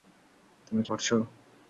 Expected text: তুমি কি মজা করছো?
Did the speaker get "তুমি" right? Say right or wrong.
right